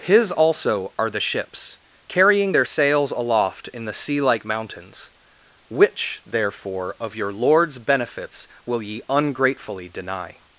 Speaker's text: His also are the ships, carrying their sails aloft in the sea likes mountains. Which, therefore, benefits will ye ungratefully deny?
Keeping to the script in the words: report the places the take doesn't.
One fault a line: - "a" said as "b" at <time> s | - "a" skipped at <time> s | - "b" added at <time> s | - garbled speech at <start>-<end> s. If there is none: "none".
- "likes" said as "like" at 4.2 s
- "of your LORD'S" added at 7.0 s